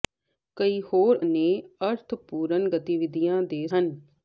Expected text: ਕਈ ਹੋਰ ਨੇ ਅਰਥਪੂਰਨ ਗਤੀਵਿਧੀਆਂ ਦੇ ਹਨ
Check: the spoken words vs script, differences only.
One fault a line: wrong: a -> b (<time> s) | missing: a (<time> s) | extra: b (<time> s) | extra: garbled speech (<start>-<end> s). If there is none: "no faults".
no faults